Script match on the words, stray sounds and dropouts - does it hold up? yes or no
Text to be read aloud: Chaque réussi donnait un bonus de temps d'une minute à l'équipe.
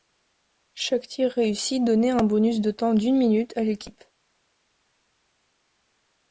no